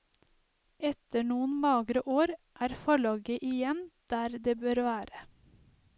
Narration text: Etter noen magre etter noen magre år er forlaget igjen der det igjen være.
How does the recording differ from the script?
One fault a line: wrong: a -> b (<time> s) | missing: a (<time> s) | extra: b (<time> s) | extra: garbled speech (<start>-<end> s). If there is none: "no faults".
missing: etter noen magre (2.0 s)
wrong: igjen -> bør (4.6 s)